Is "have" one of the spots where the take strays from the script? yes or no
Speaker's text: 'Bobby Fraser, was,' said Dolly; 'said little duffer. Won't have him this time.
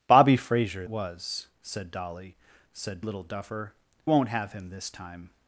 no